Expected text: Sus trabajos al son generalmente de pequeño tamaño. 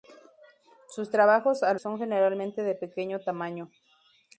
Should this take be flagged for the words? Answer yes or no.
no